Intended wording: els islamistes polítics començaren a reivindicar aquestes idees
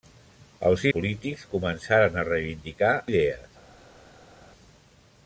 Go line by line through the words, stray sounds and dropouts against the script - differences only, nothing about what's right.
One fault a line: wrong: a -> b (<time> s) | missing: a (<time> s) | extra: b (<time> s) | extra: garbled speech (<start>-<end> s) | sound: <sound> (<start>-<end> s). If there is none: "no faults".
missing: islamistes (0.8 s)
missing: aquestes (2.9 s)